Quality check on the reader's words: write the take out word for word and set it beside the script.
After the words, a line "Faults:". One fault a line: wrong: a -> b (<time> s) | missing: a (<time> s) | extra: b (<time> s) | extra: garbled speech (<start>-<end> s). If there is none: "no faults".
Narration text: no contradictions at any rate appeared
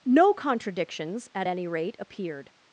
no contradictions at any rate appeared
Faults:
no faults